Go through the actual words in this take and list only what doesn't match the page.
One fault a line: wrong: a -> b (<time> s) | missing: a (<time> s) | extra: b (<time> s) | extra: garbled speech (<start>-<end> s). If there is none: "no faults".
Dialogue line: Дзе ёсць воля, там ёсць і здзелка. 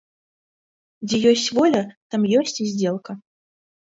no faults